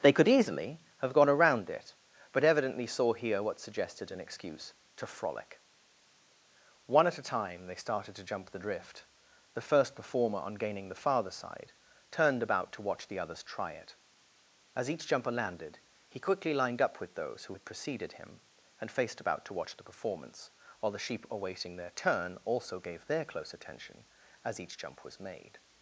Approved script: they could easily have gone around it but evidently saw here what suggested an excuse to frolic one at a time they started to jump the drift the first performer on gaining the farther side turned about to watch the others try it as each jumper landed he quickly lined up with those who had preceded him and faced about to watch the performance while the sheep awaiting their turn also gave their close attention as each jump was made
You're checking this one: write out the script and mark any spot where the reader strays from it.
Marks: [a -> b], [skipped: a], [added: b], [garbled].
they could easily have gone around it but evidently saw here what suggested an excuse to frolic one at a time they started to jump the drift the first performer on gaining the farther side turned about to watch the others try it as each jumper landed he quickly lined up with those who had preceded him and faced about to watch the performance while the sheep awaiting their turn also gave their close attention as each jump was made